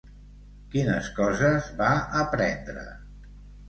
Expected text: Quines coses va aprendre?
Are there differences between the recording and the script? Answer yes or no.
no